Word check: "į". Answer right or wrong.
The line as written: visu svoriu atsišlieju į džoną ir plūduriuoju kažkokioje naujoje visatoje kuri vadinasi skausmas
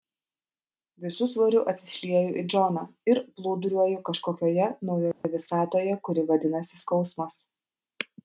right